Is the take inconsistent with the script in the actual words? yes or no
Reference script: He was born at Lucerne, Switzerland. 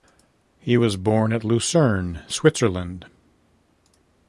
no